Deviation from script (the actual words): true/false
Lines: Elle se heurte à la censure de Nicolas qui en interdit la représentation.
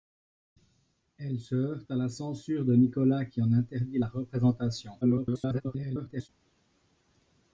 true